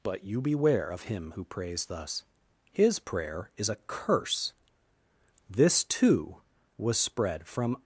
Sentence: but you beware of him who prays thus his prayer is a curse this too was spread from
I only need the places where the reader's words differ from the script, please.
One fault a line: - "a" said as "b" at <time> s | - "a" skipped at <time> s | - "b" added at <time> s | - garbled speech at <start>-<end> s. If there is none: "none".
none